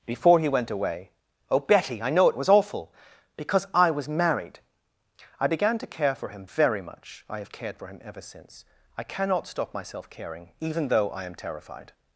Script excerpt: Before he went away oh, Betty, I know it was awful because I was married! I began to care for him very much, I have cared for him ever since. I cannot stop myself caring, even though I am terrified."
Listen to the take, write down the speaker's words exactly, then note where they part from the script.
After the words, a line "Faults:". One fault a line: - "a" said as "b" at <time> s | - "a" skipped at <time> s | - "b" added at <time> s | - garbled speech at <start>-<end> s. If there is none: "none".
Before he went away oh, Betty, I know it was awful because I was married! I began to care for him very much, I have cared for him ever since. I cannot stop myself caring, even though I am terrified."
Faults:
none